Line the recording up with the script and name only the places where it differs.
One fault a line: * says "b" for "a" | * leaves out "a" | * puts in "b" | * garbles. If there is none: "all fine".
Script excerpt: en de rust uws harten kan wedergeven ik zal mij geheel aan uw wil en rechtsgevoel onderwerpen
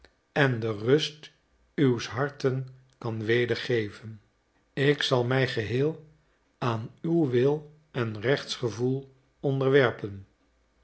all fine